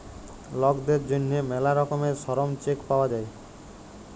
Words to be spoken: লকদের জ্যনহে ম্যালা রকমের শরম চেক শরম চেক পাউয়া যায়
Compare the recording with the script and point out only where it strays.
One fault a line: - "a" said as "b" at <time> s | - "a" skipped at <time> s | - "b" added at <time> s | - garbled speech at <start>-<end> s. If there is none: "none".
- "শরম চেক" skipped at 2.8 s